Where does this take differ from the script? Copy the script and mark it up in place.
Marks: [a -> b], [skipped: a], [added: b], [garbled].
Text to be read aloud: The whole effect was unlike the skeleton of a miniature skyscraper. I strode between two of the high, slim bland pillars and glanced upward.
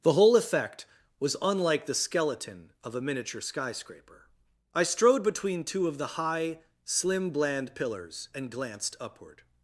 The whole effect was unlike the skeleton of a miniature skyscraper. I strode between two of the high, slim bland pillars and glanced upward.